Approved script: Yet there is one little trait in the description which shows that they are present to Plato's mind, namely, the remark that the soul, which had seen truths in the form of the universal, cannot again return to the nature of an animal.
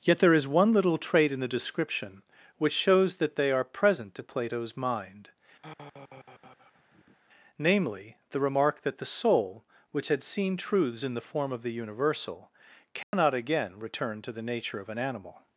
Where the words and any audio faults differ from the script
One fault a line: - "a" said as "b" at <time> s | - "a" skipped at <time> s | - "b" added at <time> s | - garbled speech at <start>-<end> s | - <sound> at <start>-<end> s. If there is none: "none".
- sigh at 5.6-7.2 s
- dropout at 13.0-13.1 s